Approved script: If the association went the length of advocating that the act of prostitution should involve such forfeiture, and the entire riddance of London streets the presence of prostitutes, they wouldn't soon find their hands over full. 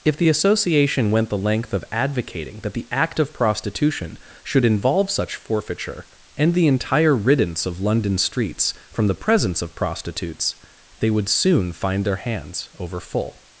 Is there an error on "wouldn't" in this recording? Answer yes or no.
yes